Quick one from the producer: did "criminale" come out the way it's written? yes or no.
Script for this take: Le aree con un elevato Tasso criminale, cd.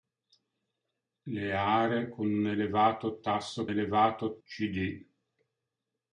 no